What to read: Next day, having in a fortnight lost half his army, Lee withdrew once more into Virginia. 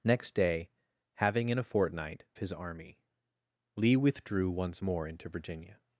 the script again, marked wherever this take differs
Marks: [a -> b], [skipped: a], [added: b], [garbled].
Next day, having in a fortnight [skipped: lost half] his army, Lee withdrew once more into Virginia.